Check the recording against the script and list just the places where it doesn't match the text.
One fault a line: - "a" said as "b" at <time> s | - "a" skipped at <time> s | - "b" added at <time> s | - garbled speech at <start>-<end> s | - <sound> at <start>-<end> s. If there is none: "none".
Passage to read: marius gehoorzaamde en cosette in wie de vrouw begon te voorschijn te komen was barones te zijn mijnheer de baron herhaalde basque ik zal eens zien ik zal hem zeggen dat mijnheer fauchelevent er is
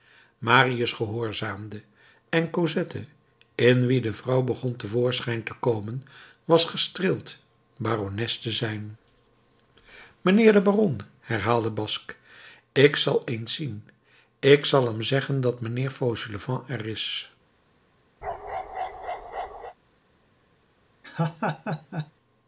- "gestreeld" added at 6.7 s
- bark at 18.2-19.7 s
- laugh at 21.0-22.1 s